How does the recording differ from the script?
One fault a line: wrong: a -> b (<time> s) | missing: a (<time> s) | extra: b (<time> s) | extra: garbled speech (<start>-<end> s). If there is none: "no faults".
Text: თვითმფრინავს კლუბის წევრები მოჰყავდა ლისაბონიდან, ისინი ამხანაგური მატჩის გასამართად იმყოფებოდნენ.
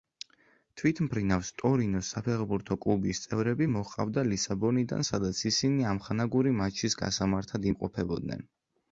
extra: ტორინოს საფეხბურთო (1.6 s)
extra: სადაც (5.1 s)